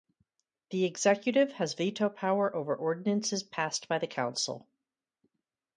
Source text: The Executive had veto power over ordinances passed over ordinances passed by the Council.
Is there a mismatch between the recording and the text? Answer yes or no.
yes